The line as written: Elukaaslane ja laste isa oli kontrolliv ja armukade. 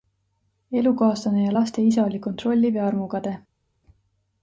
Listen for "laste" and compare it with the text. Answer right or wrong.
right